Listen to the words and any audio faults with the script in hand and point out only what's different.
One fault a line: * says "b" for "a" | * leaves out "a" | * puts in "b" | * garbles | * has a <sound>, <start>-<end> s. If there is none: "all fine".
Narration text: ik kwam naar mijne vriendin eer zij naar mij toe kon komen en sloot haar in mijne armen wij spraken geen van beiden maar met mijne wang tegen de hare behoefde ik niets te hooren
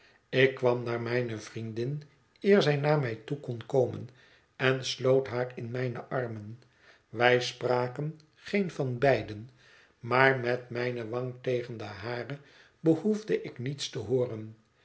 all fine